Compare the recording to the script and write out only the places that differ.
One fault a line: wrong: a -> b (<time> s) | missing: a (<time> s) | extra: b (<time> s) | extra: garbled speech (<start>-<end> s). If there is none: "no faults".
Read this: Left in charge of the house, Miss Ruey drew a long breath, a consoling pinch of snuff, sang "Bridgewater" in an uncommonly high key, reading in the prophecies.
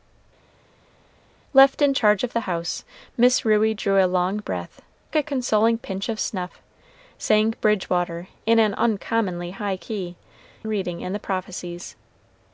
no faults